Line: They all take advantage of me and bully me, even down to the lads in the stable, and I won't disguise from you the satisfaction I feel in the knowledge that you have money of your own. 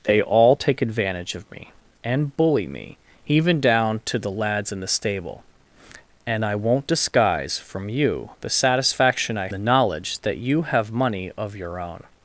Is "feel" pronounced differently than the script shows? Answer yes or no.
yes